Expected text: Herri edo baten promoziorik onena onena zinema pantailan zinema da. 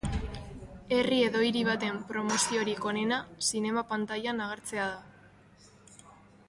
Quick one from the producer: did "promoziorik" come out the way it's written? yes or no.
yes